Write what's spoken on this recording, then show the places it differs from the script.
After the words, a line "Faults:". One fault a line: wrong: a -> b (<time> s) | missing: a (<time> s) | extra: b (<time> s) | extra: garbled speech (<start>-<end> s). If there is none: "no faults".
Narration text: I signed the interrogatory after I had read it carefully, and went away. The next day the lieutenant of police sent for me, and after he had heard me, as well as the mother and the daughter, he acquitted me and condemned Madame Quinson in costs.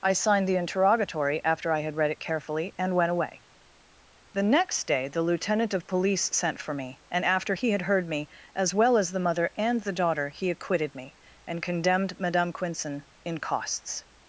I signed the interrogatory after I had read it carefully, and went away. The next day the lieutenant of police sent for me, and after he had heard me, as well as the mother and the daughter, he acquitted me and condemned Madame Quinson in costs.
Faults:
no faults